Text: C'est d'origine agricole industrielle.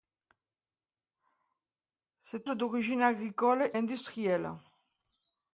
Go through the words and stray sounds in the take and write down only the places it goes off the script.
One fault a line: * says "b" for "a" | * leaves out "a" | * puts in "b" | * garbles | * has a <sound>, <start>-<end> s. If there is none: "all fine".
all fine